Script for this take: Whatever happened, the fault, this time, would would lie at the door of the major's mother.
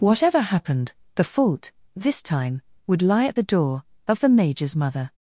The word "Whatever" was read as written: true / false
true